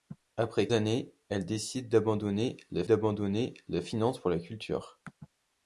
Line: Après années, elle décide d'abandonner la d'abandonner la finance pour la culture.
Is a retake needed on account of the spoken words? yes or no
no